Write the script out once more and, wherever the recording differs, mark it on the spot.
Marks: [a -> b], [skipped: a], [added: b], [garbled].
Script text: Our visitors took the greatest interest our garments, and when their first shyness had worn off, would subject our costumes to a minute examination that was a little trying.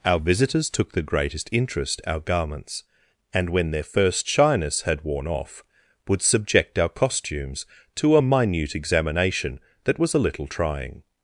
Our visitors took the greatest interest our garments, and when their first shyness had worn off, would subject our costumes to a minute examination that was a little trying.